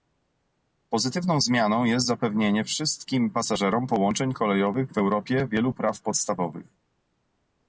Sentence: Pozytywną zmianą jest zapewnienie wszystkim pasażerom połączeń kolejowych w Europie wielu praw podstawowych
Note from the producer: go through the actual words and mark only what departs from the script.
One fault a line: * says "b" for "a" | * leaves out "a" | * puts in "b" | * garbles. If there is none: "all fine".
all fine